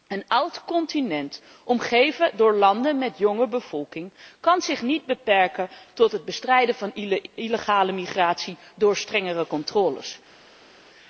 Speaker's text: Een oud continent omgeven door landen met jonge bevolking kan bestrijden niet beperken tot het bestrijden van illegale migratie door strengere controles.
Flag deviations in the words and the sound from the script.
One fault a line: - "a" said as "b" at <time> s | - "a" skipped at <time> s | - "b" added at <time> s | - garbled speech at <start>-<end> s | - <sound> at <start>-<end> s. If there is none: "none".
- "bestrijden" said as "zich" at 4.6 s